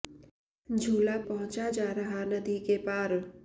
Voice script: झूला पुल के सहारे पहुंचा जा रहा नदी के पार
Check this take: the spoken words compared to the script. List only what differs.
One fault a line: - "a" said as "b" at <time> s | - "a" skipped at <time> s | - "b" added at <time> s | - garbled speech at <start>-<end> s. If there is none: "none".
- "पुल के सहारे" skipped at 1.2 s